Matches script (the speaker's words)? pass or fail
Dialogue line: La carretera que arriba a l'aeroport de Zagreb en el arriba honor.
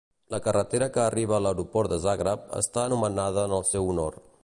fail